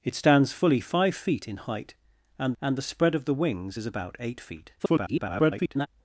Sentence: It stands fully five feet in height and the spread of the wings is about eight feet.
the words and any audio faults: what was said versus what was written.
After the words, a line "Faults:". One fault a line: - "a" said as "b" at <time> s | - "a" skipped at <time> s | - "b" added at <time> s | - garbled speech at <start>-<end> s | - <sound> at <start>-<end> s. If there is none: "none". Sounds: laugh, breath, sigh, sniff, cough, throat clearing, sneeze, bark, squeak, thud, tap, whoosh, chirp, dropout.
It stands fully five feet in height and and the spread of the wings is about eight feet. [garbled]
Faults:
- "and" added at 2.6 s
- garbled speech at 4.8-5.9 s